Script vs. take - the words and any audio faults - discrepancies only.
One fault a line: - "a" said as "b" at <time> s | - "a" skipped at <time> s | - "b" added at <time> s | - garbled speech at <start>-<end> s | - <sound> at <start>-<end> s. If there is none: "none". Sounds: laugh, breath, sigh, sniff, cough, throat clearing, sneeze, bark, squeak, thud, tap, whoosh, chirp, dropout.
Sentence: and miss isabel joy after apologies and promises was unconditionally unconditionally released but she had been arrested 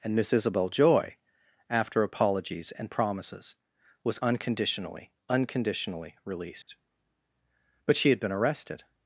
- dropout at 6.6-6.7 s